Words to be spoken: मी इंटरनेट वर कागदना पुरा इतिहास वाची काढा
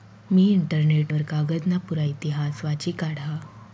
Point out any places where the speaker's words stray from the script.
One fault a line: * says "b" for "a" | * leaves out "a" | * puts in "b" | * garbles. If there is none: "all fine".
all fine